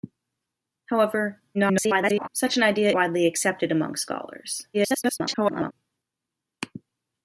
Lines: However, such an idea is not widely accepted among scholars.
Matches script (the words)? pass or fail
fail